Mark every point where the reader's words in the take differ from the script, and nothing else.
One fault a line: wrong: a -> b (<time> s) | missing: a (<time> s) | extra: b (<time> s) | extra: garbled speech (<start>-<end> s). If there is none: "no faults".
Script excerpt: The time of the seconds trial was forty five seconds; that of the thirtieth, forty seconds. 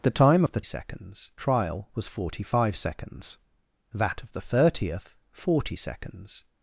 no faults